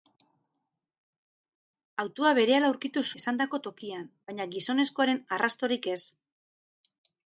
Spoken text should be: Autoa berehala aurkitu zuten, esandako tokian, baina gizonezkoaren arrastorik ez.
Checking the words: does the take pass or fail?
fail